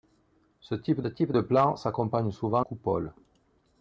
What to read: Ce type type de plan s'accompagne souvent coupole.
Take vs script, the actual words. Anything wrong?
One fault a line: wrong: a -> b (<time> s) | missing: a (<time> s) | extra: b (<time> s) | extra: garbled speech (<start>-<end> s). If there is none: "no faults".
no faults